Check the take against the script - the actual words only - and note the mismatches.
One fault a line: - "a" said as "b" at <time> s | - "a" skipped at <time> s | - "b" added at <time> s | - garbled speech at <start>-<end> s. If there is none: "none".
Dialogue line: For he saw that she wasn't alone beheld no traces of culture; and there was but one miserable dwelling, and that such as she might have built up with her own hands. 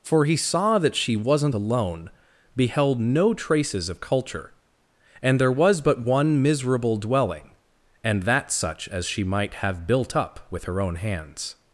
none